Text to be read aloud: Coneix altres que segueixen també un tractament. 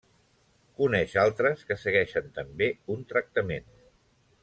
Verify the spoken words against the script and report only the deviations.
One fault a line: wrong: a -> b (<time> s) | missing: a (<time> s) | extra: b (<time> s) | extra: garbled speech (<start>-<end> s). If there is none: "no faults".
no faults